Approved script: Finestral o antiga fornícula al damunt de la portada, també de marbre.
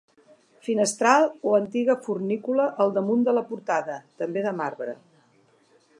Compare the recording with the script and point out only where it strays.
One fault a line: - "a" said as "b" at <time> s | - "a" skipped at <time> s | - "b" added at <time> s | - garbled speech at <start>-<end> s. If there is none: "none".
none